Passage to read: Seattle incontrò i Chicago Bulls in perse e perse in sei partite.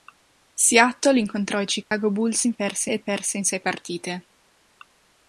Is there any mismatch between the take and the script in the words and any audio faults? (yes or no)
yes